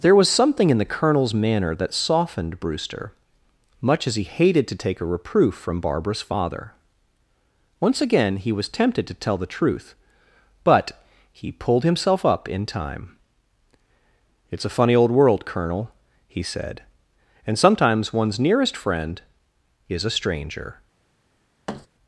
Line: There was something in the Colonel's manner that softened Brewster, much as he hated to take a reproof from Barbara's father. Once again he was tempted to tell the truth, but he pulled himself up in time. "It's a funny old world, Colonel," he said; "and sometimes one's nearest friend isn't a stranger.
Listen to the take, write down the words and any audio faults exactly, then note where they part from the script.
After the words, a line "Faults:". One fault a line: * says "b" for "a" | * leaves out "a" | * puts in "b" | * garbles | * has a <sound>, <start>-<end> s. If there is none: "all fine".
There was something in the Colonel's manner that softened Brewster, much as he hated to take a reproof from Barbara's father. Once again he was tempted to tell the truth, but he pulled himself up in time. "It's a funny old world, Colonel," he said; "and sometimes one's nearest friend is a stranger.
Faults:
* says "is" for "isn't"
* has a thud, 21.7-21.9 s